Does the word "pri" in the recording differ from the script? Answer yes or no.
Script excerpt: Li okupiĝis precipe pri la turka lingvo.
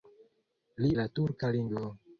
yes